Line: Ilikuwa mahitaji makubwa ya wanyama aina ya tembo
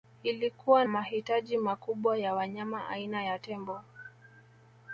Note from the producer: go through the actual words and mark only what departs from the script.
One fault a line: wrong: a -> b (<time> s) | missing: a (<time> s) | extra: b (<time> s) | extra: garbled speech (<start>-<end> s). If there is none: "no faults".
no faults